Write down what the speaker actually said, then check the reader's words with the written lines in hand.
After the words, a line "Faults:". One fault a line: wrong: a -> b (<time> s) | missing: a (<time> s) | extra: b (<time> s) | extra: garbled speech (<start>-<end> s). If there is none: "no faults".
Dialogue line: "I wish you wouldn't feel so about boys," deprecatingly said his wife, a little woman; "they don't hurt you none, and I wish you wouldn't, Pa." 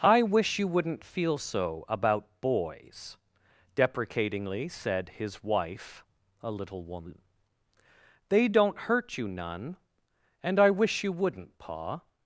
"I wish you wouldn't feel so about boys," deprecatingly said his wife, a little woman; "they don't hurt you none, and I wish you wouldn't, Pa."
Faults:
no faults